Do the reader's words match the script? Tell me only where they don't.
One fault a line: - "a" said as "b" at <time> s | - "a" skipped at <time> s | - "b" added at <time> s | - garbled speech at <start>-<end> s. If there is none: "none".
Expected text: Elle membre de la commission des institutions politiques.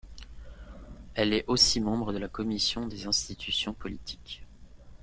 - "est aussi" added at 1.3 s